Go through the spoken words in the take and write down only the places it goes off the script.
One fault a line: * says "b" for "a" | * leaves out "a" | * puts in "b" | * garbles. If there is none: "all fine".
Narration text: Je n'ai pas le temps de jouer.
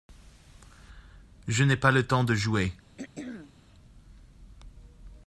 all fine